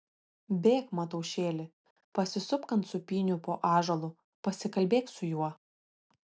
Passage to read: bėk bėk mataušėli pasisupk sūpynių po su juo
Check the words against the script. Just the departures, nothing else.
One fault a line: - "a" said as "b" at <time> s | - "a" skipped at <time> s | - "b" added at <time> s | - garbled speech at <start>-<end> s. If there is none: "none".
- "bėk" skipped at 0.9 s
- "ant" added at 2.8 s
- "ąžuolu pasikalbėk" added at 3.7 s